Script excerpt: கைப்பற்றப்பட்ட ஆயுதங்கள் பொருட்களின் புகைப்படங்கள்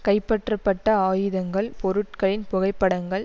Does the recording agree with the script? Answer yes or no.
yes